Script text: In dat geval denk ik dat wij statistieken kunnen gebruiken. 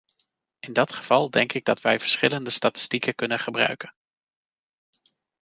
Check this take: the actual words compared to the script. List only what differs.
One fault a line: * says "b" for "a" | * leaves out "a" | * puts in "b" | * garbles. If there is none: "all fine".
* puts in "verschillende"